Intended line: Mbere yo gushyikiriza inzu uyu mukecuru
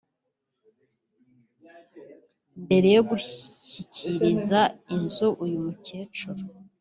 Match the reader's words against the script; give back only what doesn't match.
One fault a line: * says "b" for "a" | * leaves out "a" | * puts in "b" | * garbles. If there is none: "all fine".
all fine